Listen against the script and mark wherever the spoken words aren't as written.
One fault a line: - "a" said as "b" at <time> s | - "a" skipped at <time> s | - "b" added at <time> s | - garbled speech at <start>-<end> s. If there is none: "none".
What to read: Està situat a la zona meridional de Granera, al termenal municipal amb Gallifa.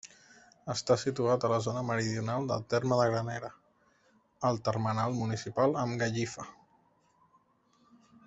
- "del terme" added at 2.5 s